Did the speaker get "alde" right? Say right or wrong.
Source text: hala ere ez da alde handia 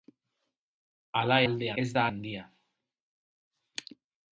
wrong